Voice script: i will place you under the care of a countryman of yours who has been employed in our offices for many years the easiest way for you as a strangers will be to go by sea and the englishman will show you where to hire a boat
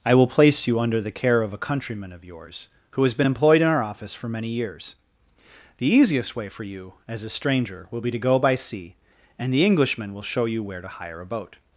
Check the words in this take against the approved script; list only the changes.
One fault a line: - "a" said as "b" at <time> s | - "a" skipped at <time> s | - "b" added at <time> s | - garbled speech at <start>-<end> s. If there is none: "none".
- "offices" said as "office" at 3.8 s
- "strangers" said as "stranger" at 7.3 s